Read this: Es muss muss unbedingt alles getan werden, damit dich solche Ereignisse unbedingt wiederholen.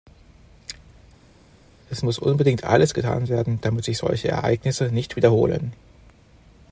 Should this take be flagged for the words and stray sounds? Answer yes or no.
yes